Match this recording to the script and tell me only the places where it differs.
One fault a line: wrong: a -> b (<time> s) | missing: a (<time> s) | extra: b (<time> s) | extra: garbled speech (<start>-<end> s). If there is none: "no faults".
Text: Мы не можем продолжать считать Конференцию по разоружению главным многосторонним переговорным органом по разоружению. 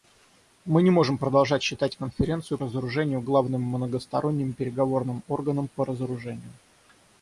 missing: по (2.6 s)